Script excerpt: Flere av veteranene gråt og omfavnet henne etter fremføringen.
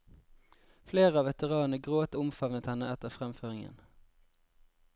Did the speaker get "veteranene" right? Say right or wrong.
right